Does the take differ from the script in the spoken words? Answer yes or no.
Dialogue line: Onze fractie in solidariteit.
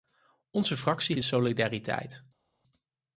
no